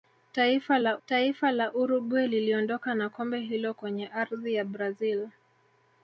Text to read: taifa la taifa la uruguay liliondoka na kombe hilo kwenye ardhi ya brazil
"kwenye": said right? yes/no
yes